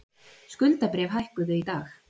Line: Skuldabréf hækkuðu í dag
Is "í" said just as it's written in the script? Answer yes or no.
yes